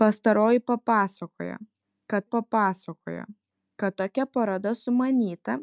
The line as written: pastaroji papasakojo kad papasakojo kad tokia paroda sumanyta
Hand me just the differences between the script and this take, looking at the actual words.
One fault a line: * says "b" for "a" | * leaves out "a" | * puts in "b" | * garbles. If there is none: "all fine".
all fine